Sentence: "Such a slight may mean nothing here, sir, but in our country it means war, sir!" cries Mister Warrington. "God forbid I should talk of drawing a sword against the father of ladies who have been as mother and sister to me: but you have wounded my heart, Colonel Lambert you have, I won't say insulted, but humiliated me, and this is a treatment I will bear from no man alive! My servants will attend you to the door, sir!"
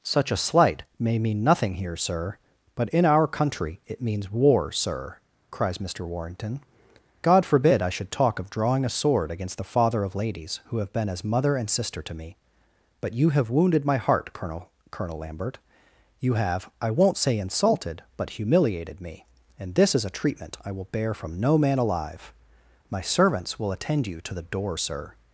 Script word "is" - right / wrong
right